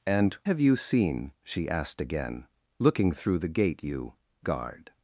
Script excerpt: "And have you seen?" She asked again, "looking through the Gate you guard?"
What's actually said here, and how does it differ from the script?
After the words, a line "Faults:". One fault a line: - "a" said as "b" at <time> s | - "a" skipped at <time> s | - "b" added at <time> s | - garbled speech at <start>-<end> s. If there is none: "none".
"And have you seen?" She asked again, "looking through the Gate you guard?"
Faults:
none